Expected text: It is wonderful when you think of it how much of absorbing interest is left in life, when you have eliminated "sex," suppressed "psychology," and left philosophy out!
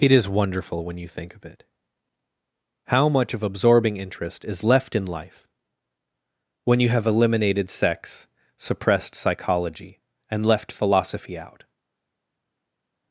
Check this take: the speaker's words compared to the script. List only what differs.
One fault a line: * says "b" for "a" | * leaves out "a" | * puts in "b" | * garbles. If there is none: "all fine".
all fine